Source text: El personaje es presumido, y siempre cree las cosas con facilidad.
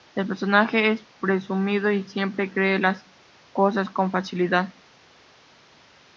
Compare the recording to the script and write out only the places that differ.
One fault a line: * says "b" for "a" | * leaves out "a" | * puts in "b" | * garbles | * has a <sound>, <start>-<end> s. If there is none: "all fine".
all fine